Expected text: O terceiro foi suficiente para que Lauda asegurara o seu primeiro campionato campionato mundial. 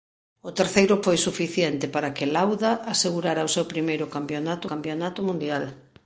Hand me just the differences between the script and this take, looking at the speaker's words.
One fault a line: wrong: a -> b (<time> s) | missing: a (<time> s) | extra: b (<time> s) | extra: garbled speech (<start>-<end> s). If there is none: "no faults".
no faults